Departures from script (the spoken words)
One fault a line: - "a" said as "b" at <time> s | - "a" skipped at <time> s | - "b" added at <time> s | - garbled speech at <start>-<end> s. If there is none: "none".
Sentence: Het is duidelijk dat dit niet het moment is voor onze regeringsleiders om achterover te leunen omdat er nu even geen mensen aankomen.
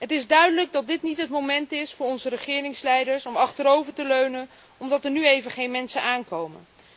none